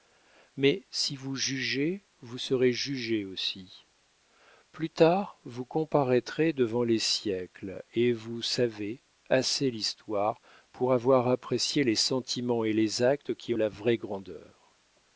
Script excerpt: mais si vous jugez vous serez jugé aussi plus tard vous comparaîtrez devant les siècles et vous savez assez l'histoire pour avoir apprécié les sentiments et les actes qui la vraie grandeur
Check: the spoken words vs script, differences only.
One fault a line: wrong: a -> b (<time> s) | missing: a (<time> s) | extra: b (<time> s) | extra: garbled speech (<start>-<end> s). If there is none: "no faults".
no faults